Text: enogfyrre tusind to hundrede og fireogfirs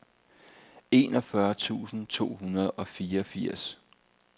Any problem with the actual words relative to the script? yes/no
no